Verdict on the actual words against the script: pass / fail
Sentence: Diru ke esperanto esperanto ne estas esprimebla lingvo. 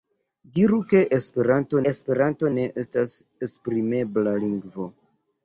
pass